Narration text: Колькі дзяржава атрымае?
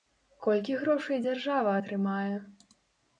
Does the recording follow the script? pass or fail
fail